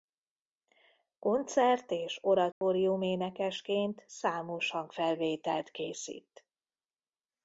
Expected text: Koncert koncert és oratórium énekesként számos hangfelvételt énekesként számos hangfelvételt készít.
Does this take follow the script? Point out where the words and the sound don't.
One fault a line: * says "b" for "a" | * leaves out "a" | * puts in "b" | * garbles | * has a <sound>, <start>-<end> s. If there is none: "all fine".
* leaves out "koncert"
* has a dropout, 2.5-2.6 s
* leaves out "énekesként számos hangfelvételt"